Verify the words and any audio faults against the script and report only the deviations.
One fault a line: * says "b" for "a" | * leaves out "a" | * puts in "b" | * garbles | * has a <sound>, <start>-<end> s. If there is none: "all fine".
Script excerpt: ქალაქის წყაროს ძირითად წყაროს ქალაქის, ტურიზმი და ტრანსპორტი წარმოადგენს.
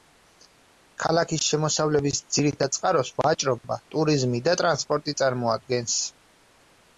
* says "შემოსავლების" for "წყაროს"
* says "ვაჭრობა" for "ქალაქის"